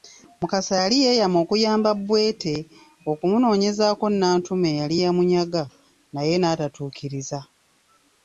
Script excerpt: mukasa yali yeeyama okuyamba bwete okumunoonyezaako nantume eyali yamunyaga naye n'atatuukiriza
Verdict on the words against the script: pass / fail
pass